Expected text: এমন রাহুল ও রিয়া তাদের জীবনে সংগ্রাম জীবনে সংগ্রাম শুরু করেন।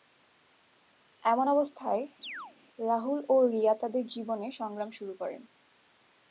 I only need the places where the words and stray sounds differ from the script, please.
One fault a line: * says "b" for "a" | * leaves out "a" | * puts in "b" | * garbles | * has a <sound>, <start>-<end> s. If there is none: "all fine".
* puts in "অবস্থায়"
* has a chirp, 2.2-2.5 s
* leaves out "জীবনে সংগ্রাম"